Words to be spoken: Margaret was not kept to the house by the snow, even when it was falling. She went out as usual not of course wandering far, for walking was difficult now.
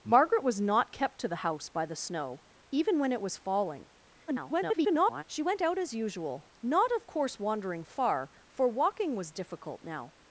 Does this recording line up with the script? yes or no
no